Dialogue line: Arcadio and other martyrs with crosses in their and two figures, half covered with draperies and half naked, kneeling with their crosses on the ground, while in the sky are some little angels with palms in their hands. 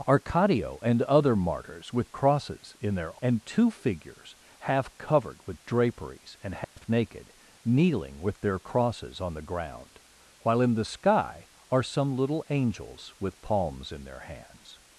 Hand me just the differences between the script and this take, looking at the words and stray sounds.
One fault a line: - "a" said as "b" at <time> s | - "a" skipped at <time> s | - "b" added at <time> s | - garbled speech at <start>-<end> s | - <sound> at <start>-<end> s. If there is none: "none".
- dropout at 6.6-6.8 s